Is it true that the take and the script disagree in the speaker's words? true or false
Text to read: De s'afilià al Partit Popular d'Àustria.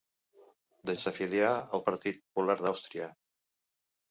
false